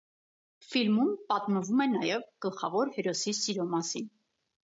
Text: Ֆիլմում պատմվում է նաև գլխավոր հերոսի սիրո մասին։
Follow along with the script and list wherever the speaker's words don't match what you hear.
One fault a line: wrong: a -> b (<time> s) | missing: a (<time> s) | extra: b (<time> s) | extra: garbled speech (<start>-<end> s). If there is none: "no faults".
no faults